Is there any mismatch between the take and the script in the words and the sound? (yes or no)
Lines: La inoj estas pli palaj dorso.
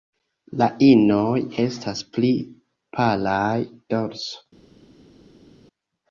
no